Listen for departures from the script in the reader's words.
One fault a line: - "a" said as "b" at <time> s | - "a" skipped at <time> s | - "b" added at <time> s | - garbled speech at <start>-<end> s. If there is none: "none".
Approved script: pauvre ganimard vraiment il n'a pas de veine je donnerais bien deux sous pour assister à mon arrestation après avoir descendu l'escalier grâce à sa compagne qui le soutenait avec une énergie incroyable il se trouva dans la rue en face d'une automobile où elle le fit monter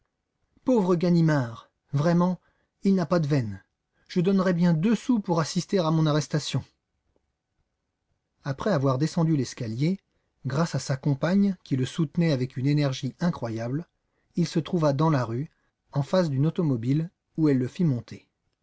none